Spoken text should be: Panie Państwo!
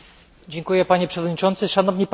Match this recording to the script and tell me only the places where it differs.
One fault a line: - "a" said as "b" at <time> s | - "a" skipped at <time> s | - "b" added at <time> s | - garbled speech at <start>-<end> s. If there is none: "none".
- "Przewodniczący Szanowni" added at 1.1 s